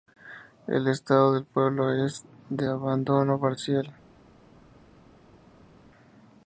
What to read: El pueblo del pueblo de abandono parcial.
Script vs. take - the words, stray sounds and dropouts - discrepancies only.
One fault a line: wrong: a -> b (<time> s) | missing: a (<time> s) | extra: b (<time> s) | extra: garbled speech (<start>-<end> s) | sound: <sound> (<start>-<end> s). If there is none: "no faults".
wrong: pueblo -> estado (0.9 s)
extra: es (1.9 s)